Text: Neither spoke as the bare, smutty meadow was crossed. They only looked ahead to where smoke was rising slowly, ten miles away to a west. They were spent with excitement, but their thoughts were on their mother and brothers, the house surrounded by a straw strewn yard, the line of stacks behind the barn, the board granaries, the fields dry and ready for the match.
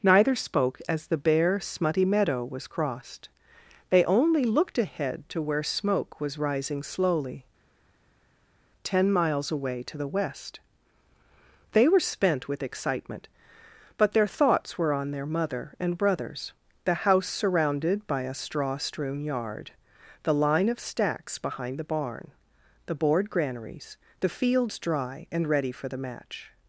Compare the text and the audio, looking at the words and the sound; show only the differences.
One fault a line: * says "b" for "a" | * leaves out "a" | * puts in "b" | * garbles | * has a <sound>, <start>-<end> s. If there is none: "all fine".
* says "the" for "a"